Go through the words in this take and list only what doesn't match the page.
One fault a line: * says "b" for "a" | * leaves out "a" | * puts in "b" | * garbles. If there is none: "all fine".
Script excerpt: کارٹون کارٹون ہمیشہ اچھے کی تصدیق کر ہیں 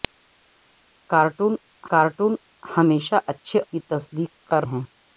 all fine